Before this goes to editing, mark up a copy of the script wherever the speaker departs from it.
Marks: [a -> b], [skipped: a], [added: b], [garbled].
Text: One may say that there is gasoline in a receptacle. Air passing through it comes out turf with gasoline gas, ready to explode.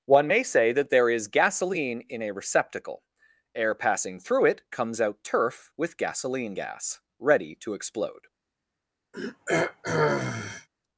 One may say that there is gasoline in a receptacle. Air passing through it comes out turf with gasoline gas, ready to explode.